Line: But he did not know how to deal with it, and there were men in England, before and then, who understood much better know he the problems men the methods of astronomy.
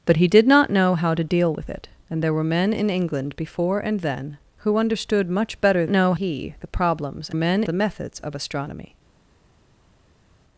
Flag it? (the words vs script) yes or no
no